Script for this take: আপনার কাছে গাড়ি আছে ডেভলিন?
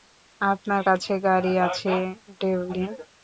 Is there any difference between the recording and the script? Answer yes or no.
no